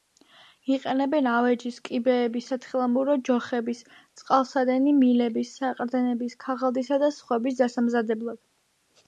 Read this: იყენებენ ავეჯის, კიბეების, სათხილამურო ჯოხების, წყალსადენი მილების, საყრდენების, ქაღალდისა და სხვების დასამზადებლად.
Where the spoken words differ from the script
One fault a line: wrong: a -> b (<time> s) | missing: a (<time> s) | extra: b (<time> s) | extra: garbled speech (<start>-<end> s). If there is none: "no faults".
no faults